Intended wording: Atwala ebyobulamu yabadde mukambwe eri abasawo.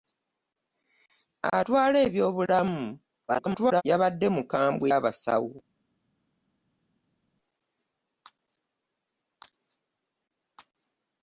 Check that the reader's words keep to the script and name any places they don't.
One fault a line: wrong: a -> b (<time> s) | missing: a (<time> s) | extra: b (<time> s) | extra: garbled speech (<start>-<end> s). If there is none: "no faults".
extra: garbled speech (3.3-3.8 s)
missing: eri (4.9 s)